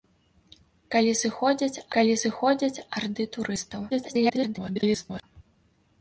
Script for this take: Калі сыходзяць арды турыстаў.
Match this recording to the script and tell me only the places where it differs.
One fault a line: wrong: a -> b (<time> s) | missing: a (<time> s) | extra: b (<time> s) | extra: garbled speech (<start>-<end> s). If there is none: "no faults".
extra: калі сыходзяць (2.0 s)
extra: garbled speech (3.9-5.2 s)